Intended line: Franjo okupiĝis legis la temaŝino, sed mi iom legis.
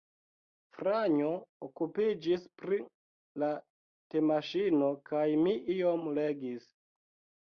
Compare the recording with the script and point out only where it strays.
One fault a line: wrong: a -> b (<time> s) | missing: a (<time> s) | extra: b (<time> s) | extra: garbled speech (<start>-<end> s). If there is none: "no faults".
wrong: legis -> pri (2.6 s)
wrong: sed -> kaj (5.1 s)